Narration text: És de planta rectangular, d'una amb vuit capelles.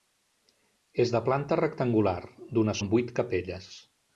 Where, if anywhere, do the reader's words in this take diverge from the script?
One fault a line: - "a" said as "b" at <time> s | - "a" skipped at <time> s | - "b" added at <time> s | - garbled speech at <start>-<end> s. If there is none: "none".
none